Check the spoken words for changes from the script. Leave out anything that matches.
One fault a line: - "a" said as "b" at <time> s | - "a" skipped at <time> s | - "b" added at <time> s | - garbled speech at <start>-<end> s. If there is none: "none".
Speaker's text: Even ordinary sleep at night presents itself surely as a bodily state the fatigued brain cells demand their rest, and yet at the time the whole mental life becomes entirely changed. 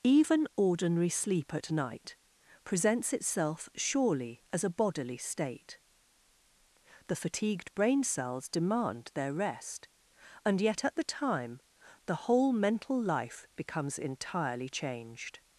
none